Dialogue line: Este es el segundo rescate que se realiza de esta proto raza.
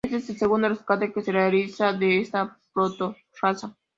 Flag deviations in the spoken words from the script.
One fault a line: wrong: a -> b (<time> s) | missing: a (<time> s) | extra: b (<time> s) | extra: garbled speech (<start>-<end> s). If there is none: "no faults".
no faults